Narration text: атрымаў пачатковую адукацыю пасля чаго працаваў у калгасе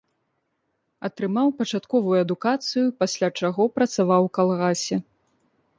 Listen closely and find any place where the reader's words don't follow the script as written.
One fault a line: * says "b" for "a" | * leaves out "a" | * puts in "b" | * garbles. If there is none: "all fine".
all fine